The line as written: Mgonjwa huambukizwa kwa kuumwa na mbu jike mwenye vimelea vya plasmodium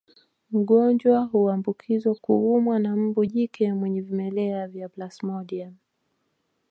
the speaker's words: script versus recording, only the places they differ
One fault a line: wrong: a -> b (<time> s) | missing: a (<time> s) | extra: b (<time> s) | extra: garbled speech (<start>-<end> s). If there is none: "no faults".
missing: kwa (2.1 s)